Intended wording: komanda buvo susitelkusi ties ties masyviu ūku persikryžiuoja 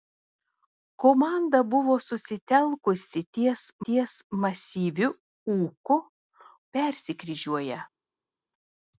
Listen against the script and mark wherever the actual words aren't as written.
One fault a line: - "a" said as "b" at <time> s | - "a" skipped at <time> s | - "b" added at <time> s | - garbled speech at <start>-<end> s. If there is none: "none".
none